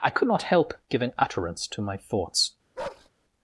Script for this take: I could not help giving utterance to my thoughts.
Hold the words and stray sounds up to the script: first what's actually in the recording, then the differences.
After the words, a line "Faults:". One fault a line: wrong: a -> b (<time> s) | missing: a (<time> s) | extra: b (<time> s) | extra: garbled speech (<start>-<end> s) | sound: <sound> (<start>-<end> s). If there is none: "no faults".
I could not help giving utterance to my thoughts.
Faults:
sound: bark (2.8-3.1 s)